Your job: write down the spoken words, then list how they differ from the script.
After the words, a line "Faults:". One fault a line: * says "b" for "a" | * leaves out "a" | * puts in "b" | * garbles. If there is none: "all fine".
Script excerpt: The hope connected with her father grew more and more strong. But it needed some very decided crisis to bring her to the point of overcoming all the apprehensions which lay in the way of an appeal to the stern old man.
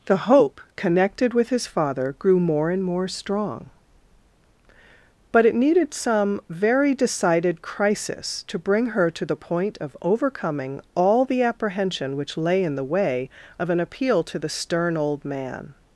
The hope connected with his father grew more and more strong. But it needed some very decided crisis to bring her to the point of overcoming all the apprehension which lay in the way of an appeal to the stern old man.
Faults:
* says "his" for "her"
* says "apprehension" for "apprehensions"